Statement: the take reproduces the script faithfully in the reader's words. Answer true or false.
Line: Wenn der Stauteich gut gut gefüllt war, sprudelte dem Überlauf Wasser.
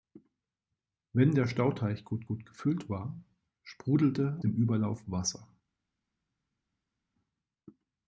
true